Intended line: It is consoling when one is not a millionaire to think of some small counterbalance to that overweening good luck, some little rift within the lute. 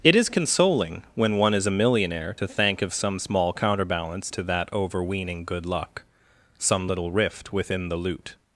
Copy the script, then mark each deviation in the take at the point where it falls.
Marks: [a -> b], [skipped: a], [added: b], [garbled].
It is consoling when one is [skipped: not] a millionaire to [think -> thank] of some small counterbalance to that overweening good luck, some little rift within the lute.